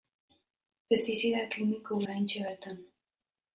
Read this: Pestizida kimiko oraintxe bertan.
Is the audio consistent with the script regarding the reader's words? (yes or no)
yes